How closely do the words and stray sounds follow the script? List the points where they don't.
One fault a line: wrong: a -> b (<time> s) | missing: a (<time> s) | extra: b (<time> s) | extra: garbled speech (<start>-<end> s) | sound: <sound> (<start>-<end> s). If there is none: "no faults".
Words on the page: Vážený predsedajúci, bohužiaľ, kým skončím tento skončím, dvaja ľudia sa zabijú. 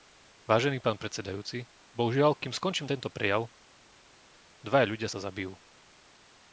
extra: pán (0.8 s)
wrong: skončím -> prejav (3.1 s)